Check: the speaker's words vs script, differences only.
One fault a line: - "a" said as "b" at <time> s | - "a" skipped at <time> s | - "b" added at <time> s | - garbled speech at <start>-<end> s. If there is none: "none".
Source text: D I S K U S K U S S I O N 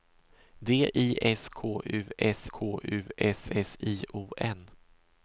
none